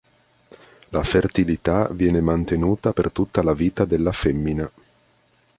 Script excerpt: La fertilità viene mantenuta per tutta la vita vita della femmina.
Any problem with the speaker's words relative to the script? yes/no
yes